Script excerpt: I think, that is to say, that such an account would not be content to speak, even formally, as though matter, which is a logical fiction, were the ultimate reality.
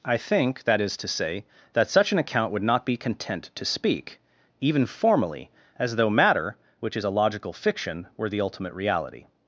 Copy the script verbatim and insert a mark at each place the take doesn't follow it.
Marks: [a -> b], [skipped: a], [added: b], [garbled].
I think, that is to say, that such an account would not be content to speak, even formally, as though matter, which is a logical fiction, were the ultimate reality.